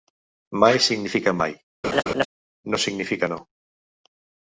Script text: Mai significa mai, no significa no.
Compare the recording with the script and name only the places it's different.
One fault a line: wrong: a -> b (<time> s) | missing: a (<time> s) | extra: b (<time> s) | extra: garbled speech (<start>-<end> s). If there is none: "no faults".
no faults